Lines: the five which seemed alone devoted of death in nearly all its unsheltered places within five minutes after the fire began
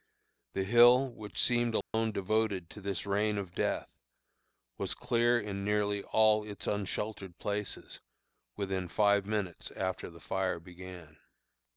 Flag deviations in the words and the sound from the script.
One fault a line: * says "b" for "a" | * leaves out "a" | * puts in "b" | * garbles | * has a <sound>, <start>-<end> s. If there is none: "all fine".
* says "hill" for "five"
* has a dropout, 1.8-1.9 s
* puts in "to this rain"
* puts in "was clear"